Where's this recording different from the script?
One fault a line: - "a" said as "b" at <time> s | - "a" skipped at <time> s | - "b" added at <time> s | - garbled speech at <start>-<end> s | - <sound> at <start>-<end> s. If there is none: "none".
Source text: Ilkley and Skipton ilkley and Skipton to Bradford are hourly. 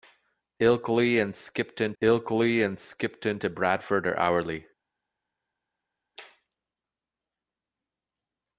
none